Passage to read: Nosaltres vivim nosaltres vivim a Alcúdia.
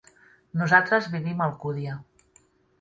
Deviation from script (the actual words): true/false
true